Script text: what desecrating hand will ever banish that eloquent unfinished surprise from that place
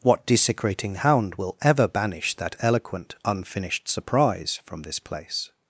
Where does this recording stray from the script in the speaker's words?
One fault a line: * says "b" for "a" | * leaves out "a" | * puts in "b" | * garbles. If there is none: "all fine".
* says "hound" for "hand"
* says "this" for "that"